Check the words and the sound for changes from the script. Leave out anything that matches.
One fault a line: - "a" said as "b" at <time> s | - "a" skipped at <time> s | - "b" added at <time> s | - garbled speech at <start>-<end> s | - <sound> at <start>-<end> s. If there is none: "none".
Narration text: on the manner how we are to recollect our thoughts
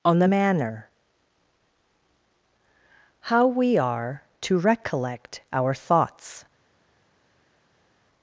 none